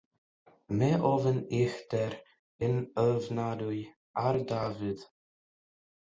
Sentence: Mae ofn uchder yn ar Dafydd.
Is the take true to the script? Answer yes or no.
no